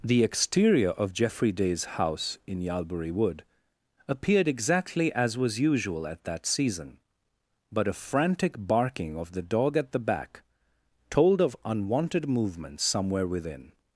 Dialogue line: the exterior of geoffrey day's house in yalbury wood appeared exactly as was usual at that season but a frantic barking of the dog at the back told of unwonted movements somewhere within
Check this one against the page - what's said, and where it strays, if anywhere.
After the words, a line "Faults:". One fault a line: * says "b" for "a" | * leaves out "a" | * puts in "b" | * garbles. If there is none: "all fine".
the exterior of geoffrey day's house in yalbury wood appeared exactly as was usual at that season but a frantic barking of the dog at the back told of unwonted movements somewhere within
Faults:
all fine